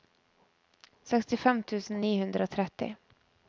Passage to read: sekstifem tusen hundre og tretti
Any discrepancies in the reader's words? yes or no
yes